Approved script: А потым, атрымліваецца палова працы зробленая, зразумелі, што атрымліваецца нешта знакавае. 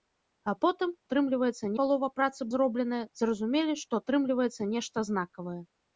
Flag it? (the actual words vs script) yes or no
no